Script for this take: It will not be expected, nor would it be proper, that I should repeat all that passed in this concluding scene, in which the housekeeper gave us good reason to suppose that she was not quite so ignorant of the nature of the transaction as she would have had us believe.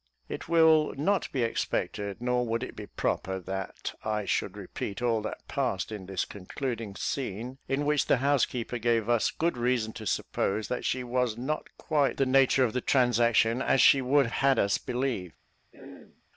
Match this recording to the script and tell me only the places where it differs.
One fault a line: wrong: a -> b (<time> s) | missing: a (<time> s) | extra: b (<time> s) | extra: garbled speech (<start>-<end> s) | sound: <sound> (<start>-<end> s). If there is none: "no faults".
missing: so ignorant of (12.2 s)
missing: have (14.3 s)
sound: throat clearing (15.7-16.2 s)